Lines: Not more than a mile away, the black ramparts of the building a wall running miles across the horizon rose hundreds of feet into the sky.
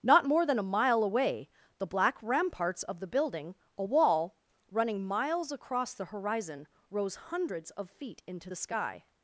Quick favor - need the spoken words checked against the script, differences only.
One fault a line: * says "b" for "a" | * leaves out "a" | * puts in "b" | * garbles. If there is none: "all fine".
all fine